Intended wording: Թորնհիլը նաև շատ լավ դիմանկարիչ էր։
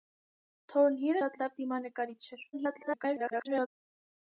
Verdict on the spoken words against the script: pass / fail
fail